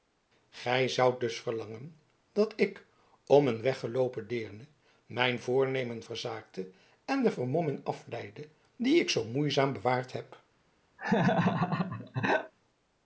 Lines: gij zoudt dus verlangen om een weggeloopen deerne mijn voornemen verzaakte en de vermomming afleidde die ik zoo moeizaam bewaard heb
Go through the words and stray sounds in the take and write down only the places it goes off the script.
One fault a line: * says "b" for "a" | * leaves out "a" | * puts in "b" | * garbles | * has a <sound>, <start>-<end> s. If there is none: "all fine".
* puts in "dat ik"
* has a laugh, 11.0-12.5 s